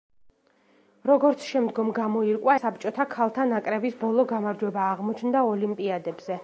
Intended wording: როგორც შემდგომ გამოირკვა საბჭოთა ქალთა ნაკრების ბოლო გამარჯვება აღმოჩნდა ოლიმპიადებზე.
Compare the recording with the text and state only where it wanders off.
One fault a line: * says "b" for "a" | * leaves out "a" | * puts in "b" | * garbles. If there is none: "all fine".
all fine